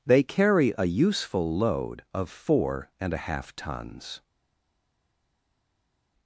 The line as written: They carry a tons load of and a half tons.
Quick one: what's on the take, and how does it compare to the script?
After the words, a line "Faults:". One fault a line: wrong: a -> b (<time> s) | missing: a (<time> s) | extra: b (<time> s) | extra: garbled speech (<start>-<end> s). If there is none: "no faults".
They carry a useful load of four and a half tons.
Faults:
wrong: tons -> useful (0.8 s)
extra: four (2.3 s)